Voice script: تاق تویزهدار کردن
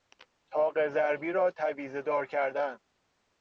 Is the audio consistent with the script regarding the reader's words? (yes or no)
no